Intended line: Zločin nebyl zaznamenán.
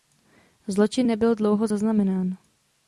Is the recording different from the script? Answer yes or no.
yes